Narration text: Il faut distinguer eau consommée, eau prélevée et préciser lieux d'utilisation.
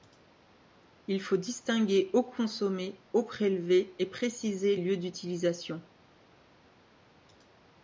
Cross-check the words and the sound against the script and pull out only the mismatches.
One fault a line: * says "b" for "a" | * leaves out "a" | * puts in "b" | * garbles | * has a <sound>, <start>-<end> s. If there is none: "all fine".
all fine